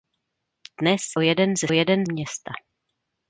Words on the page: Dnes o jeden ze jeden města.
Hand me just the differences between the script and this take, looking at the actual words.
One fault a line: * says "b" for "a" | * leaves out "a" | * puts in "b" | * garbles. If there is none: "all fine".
all fine